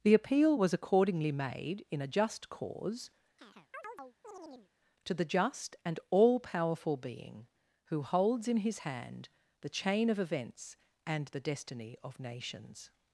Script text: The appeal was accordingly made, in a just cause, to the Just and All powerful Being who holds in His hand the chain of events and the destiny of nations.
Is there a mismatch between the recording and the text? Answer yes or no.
no